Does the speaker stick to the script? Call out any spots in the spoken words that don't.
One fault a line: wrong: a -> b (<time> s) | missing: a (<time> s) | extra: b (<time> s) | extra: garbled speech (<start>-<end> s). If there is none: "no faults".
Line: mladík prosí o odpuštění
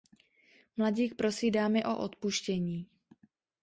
extra: dámy (1.5 s)